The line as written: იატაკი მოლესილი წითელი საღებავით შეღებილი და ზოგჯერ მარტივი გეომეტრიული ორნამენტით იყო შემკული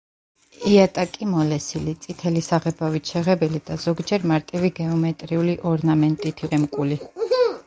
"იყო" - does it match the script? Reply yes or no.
no